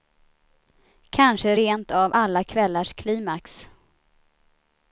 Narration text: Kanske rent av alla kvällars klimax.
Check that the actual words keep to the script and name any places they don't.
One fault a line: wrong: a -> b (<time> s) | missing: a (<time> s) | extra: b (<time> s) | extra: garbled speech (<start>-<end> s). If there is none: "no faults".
no faults